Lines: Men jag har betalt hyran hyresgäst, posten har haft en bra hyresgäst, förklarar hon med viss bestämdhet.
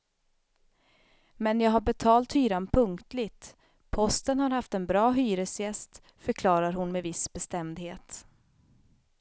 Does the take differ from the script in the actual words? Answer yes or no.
yes